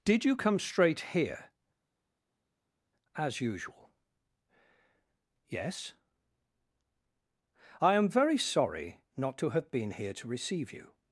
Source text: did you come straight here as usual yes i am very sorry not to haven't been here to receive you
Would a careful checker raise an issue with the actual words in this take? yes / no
yes